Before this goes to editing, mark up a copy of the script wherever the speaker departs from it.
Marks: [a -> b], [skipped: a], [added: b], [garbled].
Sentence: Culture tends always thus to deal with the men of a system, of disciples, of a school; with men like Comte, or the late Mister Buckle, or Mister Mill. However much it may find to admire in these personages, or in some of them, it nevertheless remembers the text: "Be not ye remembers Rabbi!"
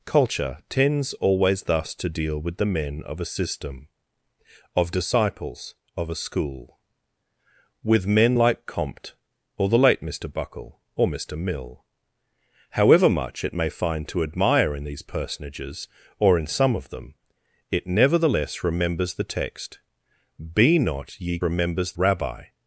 Culture tends always thus to deal with the men of a system, of disciples, of a school; with men like Comte, or the late Mister Buckle, or Mister Mill. However much it may find to admire in these personages, or in some of them, it nevertheless remembers the text: "Be not ye remembers Rabbi!"